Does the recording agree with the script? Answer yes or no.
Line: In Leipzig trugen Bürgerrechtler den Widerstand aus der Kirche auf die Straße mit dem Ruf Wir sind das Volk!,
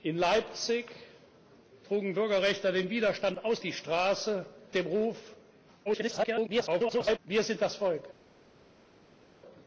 no